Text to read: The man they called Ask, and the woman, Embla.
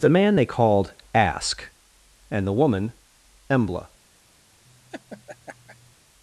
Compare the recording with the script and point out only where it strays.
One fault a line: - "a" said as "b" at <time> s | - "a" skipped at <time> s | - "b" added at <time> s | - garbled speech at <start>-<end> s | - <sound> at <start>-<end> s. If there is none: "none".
- laugh at 4.6-6.0 s